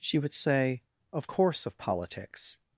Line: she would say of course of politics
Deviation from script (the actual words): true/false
false